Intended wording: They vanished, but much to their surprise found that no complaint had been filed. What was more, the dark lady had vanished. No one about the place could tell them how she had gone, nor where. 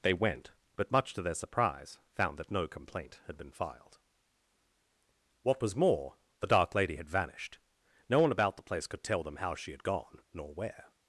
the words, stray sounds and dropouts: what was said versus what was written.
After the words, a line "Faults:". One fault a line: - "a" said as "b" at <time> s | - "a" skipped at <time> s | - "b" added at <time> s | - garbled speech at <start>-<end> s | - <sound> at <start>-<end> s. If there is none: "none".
They went, but much to their surprise found that no complaint had been filed. What was more, the dark lady had vanished. No one about the place could tell them how she had gone, nor where.
Faults:
- "vanished" said as "went" at 0.1 s